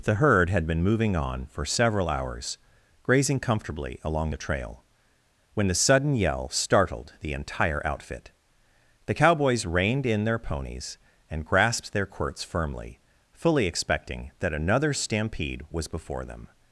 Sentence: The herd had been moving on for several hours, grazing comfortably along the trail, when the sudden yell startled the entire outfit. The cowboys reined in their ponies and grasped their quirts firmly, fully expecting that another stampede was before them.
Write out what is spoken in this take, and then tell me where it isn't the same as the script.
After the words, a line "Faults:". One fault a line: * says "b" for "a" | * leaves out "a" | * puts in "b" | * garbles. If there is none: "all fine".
The herd had been moving on for several hours, grazing comfortably along the trail, when the sudden yell startled the entire outfit. The cowboys reined in their ponies and grasped their quirts firmly, fully expecting that another stampede was before them.
Faults:
all fine